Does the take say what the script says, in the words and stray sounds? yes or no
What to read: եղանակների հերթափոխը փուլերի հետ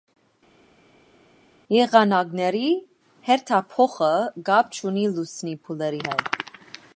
no